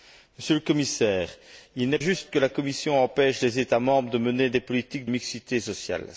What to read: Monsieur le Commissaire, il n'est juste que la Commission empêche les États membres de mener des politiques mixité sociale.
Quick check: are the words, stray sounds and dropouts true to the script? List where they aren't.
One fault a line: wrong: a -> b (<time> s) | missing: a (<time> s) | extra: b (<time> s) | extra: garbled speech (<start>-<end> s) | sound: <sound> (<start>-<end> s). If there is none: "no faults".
no faults